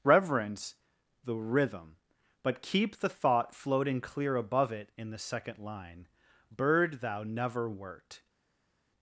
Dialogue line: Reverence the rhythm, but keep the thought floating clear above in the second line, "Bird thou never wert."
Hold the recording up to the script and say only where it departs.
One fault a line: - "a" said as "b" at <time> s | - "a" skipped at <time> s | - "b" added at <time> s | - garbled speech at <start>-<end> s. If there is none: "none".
- "it" added at 4.7 s